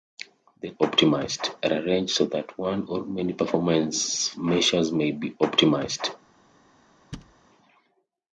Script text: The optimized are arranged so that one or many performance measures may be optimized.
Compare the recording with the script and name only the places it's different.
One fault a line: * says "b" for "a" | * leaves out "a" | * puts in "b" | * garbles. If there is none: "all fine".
all fine